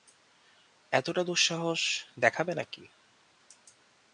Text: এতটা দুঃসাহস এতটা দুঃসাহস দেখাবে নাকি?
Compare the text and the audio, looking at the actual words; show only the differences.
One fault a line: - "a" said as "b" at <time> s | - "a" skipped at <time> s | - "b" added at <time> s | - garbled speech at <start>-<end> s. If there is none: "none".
- "এতটা দুঃসাহস" skipped at 1.8 s